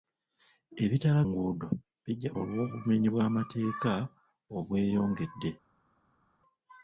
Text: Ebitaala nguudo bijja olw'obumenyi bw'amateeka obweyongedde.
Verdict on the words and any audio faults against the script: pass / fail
pass